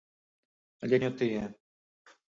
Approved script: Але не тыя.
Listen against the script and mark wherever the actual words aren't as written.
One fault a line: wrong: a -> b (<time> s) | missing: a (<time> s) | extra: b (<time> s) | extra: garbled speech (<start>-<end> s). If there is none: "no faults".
no faults